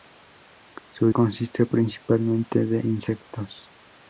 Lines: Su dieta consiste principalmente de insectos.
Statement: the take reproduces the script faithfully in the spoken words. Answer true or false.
false